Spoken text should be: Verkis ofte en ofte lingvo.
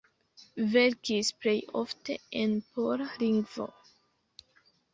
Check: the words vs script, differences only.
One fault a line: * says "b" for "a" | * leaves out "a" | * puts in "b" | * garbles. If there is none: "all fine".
* puts in "plej"
* says "pola" for "ofte"